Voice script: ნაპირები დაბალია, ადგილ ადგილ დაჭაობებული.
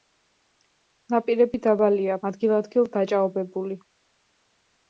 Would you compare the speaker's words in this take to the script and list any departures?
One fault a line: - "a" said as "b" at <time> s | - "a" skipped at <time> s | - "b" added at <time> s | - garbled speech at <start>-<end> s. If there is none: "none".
none